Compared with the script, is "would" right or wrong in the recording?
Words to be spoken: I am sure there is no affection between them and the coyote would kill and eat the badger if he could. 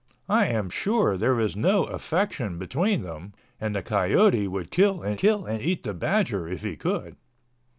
right